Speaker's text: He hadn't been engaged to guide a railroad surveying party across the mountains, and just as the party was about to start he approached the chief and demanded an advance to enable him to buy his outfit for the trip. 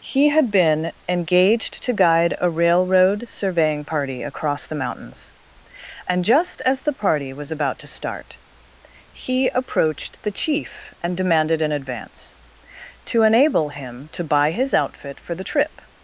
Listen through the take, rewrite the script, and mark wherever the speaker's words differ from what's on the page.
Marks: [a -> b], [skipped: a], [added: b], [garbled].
He [hadn't -> had] been engaged to guide a railroad surveying party across the mountains, and just as the party was about to start he approached the chief and demanded an advance to enable him to buy his outfit for the trip.